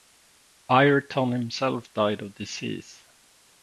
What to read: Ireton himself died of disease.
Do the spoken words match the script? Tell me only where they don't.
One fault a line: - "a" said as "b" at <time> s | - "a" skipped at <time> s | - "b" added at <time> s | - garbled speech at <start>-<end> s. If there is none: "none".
none